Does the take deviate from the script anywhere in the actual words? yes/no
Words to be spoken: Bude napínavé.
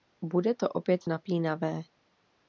yes